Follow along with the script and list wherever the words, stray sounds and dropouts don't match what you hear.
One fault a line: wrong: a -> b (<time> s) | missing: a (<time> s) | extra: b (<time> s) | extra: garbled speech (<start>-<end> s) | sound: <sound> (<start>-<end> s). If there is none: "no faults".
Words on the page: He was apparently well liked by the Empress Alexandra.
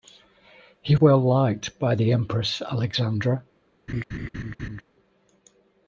missing: was apparently (0.9 s)
sound: laugh (3.9-4.8 s)